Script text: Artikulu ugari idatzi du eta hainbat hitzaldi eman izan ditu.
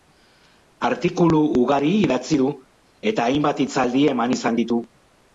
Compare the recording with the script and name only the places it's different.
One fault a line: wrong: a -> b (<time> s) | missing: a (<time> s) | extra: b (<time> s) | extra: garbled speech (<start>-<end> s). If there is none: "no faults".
no faults